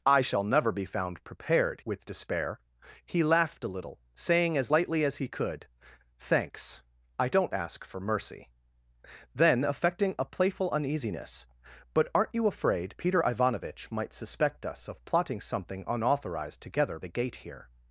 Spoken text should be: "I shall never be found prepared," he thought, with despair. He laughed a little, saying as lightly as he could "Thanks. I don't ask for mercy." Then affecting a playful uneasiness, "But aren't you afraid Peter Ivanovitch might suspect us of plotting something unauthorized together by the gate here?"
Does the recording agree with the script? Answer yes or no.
no